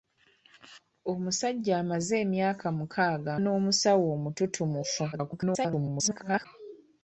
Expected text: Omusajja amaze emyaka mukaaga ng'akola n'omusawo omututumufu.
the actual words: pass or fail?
fail